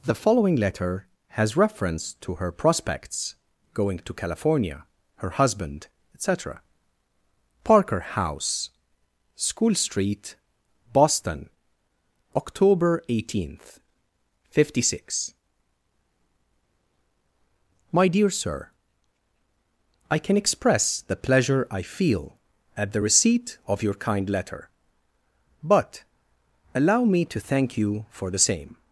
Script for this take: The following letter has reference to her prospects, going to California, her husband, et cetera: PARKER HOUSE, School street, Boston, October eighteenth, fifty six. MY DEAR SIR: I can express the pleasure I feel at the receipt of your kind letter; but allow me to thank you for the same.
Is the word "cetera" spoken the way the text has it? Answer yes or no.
yes